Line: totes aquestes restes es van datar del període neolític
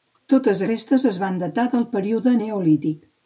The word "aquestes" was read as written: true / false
false